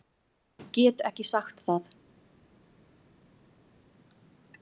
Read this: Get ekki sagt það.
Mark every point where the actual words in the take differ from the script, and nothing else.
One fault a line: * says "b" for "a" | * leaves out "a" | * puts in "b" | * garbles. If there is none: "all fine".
all fine